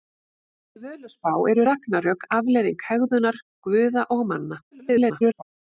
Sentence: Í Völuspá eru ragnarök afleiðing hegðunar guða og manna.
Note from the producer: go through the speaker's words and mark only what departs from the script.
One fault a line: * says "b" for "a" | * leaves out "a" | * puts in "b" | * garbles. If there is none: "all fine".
* garbles